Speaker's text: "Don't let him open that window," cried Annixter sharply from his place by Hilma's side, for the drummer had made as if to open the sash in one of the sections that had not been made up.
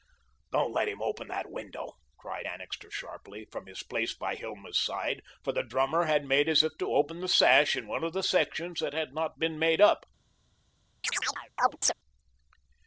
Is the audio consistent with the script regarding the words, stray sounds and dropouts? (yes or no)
no